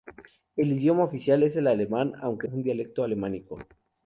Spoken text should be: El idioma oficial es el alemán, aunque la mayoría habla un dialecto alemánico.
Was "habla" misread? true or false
true